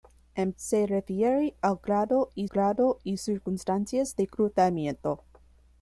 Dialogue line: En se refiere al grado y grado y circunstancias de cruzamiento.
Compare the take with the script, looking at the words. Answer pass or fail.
pass